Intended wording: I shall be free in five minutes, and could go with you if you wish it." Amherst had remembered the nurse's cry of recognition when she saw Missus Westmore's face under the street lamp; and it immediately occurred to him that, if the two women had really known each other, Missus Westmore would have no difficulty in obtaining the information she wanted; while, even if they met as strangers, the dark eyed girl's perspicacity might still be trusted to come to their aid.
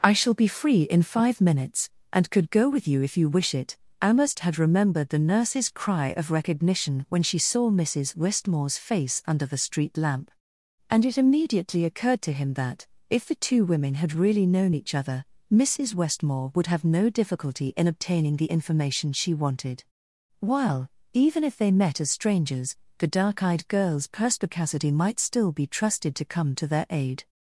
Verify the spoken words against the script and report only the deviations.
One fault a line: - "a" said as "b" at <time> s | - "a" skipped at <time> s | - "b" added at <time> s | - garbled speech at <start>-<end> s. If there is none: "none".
none